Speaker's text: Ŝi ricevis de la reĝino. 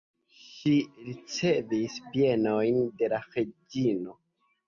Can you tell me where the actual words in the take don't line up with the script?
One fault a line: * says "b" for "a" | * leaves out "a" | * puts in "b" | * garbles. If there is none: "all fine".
* puts in "bienojn"